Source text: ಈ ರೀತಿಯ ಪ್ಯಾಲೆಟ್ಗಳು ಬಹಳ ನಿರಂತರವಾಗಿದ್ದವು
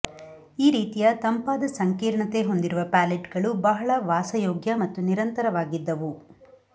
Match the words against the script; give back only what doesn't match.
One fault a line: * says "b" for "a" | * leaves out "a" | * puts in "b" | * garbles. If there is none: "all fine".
* puts in "ತಂಪಾದ ಸಂಕೀರ್ಣತೆ ಹೊಂದಿರುವ"
* puts in "ವಾಸಯೋಗ್ಯ ಮತ್ತು"